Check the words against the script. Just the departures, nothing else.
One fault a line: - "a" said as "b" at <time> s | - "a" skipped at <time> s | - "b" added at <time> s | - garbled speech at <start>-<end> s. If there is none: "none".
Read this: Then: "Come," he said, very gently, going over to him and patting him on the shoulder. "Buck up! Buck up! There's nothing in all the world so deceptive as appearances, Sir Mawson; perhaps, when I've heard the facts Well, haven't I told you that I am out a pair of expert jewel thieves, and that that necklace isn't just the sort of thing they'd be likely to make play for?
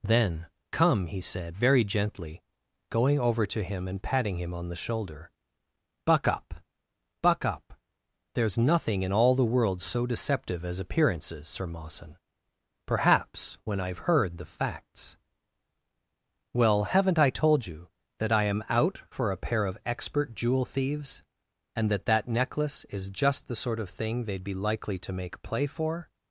- "for" added at 19.1 s
- "isn't" said as "is" at 22.8 s